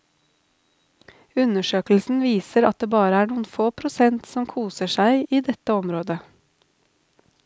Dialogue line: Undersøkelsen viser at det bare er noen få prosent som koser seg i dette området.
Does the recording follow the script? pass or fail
pass